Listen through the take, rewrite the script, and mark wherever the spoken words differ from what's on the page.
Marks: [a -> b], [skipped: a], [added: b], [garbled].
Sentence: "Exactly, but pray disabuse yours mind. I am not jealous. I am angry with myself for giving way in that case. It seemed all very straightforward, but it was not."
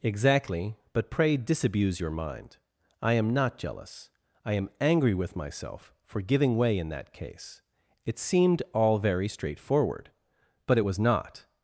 "Exactly, but pray disabuse [yours -> your] mind. I am not jealous. I am angry with myself for giving way in that case. It seemed all very straightforward, but it was not."